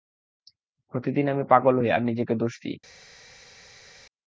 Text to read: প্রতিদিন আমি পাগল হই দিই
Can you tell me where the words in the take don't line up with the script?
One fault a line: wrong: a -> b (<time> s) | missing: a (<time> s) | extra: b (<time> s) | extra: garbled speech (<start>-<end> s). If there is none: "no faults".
extra: আর নিজেকে দোষ (1.9 s)